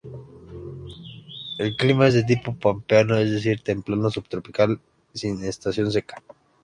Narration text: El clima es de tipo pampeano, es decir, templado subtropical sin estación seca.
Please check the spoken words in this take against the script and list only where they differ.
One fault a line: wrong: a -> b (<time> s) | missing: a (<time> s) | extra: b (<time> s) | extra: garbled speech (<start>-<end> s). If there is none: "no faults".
no faults